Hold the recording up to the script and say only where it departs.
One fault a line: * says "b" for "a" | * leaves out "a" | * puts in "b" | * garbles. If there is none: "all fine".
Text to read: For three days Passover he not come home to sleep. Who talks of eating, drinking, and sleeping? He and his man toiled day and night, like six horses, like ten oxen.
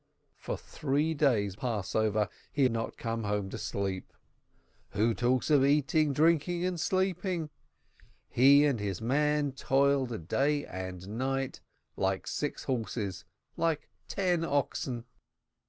all fine